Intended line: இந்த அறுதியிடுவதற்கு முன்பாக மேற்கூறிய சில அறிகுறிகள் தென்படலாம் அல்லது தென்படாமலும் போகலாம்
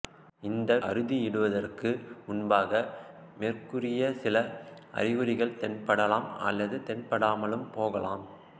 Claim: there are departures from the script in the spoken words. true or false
false